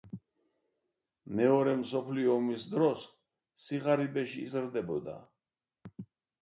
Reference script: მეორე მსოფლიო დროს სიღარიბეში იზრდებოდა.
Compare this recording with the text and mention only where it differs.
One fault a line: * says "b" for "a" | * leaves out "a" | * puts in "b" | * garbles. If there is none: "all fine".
* puts in "ომის"